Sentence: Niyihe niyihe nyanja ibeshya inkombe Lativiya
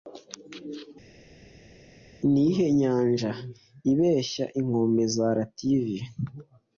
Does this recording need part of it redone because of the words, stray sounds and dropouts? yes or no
yes